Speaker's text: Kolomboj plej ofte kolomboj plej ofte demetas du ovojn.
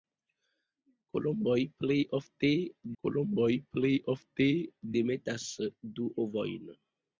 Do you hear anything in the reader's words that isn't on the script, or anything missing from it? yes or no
no